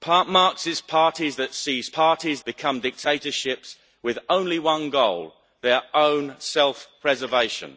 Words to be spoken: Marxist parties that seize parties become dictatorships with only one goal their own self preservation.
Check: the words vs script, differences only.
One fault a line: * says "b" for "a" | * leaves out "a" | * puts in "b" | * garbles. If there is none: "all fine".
all fine